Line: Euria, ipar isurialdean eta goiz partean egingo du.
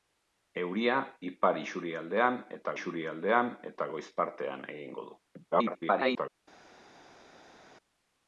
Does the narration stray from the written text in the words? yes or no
yes